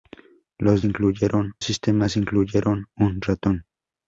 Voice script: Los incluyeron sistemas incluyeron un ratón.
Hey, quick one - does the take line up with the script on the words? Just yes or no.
yes